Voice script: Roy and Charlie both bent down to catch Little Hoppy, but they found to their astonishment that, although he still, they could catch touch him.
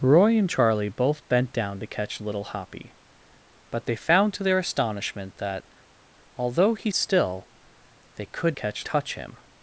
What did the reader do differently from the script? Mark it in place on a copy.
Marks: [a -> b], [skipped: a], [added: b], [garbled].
Roy and Charlie both bent down to catch Little Hoppy, but they found to their astonishment that, although he still, they could catch touch him.